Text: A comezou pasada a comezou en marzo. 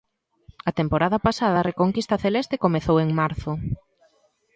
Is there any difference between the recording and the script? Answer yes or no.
yes